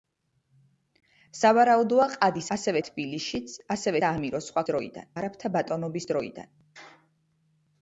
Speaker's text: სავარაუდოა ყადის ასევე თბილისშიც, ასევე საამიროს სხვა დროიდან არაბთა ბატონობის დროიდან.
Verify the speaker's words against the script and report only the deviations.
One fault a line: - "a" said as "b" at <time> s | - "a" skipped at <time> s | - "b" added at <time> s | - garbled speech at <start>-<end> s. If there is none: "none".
none